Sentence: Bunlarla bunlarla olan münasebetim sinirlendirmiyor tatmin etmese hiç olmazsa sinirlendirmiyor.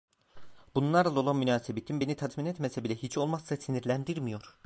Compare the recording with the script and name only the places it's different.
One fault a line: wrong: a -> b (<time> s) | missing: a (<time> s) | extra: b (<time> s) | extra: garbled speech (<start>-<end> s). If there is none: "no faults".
missing: bunlarla (1.2 s)
wrong: sinirlendirmiyor -> beni (2.0 s)
extra: bile (2.8 s)